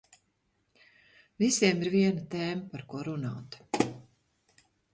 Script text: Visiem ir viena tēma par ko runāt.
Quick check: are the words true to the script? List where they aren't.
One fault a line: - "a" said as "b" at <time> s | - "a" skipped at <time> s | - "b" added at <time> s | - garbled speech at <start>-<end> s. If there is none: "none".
none